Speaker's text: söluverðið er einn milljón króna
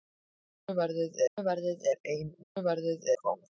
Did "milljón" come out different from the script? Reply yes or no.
yes